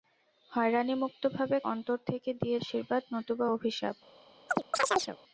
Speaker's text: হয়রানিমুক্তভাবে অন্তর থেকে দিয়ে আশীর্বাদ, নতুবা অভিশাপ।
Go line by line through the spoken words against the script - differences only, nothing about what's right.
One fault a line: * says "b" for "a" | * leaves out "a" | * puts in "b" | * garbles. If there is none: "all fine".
all fine